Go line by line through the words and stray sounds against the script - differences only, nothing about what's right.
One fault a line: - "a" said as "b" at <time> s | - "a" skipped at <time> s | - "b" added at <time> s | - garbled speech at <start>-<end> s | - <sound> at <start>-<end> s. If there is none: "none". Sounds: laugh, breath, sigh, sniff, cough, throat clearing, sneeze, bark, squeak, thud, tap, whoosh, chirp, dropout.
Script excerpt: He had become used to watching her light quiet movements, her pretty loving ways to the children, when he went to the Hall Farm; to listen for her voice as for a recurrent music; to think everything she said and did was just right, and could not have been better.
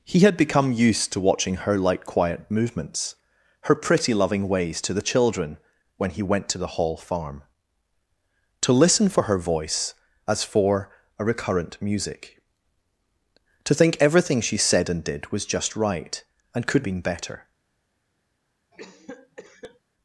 - "not have" skipped at 16.9 s
- cough at 18.7-19.8 s